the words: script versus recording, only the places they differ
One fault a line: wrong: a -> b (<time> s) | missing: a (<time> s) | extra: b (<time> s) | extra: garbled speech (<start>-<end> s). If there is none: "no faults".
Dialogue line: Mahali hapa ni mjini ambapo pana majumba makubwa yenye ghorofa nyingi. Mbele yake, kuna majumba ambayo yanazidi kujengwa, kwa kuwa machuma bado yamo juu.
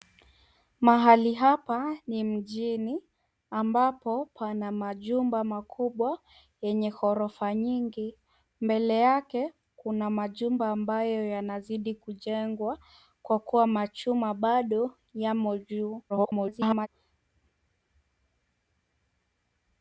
extra: garbled speech (16.1-16.9 s)